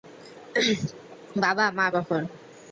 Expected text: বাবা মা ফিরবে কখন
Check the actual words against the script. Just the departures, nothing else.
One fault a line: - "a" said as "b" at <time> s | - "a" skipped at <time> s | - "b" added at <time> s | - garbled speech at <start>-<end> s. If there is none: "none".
- "ফিরবে" skipped at 1.9 s